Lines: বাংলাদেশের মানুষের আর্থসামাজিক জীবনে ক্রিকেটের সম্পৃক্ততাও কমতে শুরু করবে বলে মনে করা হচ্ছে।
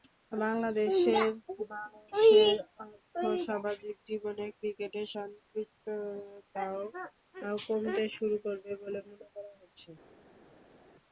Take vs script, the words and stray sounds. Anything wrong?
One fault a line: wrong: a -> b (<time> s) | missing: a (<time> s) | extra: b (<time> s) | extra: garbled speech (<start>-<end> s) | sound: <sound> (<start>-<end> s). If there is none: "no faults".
no faults